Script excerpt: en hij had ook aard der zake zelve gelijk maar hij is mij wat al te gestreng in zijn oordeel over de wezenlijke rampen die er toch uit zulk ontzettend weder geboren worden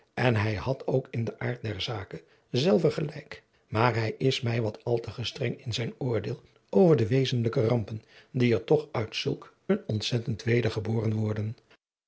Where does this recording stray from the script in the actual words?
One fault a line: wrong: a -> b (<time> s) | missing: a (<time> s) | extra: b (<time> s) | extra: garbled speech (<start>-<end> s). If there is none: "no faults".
extra: in den (1.1 s)
extra: een (9.7 s)